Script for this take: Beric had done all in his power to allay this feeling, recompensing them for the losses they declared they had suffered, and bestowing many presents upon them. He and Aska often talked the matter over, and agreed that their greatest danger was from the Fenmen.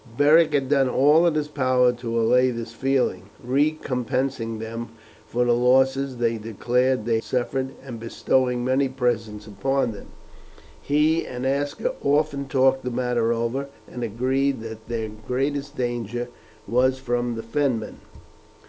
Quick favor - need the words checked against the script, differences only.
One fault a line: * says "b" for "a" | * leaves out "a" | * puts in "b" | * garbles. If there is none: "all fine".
* leaves out "had"